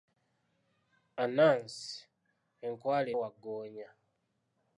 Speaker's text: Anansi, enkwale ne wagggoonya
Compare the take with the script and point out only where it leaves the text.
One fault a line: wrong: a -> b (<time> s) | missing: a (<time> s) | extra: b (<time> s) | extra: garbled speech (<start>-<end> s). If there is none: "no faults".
missing: ne (3.1 s)